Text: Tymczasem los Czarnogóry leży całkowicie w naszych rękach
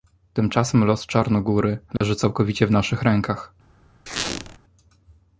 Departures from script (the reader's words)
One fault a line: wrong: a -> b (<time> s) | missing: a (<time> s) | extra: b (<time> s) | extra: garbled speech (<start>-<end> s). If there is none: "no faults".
no faults